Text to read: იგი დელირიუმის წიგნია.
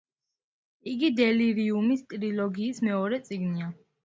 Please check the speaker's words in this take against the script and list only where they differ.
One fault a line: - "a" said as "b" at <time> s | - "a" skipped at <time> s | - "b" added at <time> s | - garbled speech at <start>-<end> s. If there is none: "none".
- "ტრილოგიის მეორე" added at 2.1 s